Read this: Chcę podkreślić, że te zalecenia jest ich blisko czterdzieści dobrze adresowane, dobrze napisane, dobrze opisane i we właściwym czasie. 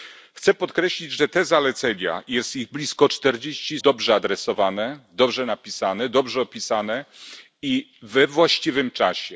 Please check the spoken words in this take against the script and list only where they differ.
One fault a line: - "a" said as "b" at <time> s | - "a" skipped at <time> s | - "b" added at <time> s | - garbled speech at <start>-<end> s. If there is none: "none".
none